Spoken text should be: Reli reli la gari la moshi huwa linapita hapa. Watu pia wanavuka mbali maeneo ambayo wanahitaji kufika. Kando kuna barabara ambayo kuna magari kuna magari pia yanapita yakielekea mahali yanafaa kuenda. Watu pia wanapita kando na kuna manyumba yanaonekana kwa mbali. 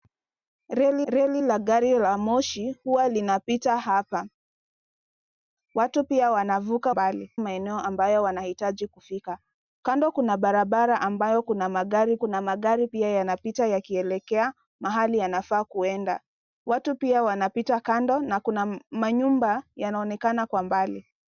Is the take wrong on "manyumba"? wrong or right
right